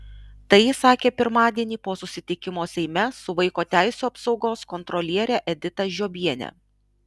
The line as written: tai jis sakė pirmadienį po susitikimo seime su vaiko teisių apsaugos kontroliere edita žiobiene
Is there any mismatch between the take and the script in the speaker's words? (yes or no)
no